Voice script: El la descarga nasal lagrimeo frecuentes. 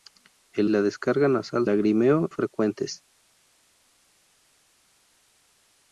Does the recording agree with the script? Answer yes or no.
yes